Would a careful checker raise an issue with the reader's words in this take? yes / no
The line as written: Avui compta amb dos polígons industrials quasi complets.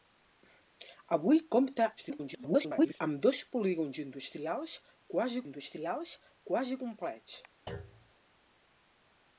yes